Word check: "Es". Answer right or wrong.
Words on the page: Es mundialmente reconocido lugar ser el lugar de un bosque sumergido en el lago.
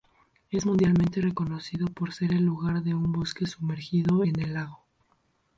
right